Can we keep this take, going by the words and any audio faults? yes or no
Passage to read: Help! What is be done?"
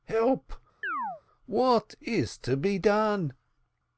no